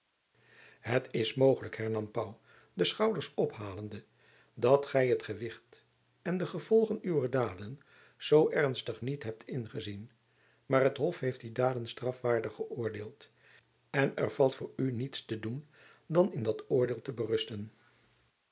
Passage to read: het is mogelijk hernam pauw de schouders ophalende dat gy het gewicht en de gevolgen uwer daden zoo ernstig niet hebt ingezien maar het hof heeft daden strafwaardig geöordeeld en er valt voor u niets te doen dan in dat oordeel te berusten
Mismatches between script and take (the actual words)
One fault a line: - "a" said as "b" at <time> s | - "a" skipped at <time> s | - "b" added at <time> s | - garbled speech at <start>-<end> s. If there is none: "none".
- "die" added at 11.4 s